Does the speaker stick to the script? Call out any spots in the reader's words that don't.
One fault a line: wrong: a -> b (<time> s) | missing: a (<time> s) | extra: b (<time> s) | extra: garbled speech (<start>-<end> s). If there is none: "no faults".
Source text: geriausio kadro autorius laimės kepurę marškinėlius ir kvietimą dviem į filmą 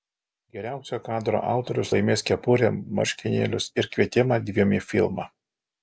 no faults